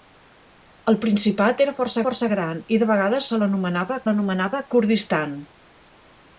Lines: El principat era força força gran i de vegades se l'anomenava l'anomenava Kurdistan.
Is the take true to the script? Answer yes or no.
yes